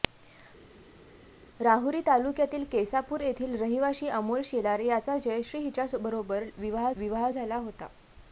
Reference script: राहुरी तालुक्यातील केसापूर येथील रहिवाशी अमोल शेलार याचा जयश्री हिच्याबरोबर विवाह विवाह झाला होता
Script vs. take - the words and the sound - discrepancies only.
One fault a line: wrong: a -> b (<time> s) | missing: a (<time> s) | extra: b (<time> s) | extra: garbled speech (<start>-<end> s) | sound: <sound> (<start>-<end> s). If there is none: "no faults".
no faults